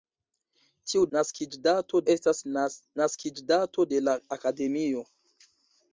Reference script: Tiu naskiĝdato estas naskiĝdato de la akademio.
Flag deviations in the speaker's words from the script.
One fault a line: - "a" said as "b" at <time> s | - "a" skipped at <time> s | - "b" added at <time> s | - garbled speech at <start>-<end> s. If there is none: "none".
none